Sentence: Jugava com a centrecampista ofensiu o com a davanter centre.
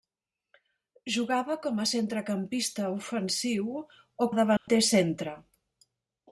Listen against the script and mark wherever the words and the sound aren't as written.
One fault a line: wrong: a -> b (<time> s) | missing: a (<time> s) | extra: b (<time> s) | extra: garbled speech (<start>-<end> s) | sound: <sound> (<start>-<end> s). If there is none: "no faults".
missing: com (4.3 s)
sound: dropout (4.6-4.7 s)